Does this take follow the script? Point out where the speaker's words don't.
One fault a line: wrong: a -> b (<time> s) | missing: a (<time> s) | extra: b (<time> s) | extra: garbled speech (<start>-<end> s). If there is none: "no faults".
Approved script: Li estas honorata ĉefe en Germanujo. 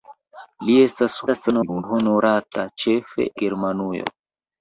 extra: garbled speech (1.3-1.8 s)
missing: en (3.3 s)